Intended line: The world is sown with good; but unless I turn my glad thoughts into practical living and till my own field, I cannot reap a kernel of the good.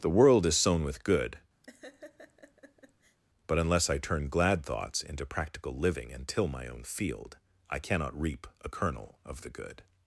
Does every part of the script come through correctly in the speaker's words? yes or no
no